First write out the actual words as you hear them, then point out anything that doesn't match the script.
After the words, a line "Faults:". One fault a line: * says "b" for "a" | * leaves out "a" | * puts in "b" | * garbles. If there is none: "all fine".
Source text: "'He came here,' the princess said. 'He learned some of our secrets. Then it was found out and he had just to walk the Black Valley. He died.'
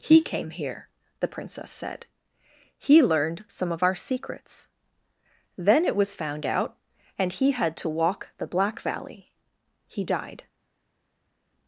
"'He came here,' the princess said. 'He learned some of our secrets. Then it was found out and he had to walk the Black Valley. He died.'
Faults:
* leaves out "just"